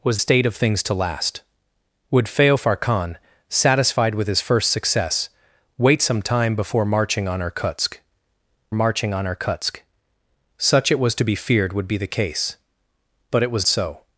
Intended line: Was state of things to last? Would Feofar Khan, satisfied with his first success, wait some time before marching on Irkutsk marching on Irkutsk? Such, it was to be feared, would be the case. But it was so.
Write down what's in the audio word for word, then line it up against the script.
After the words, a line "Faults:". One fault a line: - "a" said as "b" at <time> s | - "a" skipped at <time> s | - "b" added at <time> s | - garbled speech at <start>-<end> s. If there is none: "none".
Was state of things to last? Would Feofar Khan, satisfied with his first success, wait some time before marching on Irkutsk marching on Irkutsk? Such, it was to be feared, would be the case. But it was so.
Faults:
none